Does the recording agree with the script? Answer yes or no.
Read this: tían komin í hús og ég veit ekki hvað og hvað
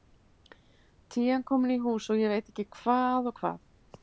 yes